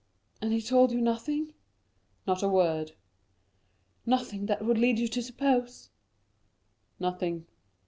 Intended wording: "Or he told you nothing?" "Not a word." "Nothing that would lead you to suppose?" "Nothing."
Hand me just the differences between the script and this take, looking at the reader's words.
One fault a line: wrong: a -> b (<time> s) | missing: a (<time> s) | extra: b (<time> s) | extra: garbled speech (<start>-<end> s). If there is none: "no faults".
wrong: Or -> And (0.4 s)